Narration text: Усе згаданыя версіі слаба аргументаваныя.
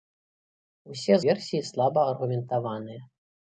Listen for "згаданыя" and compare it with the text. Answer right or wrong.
wrong